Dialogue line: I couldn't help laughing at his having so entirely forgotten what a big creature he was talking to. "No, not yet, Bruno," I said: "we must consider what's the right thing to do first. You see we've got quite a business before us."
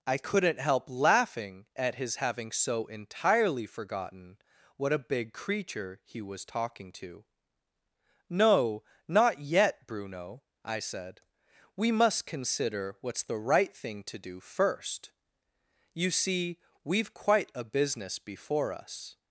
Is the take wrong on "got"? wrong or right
wrong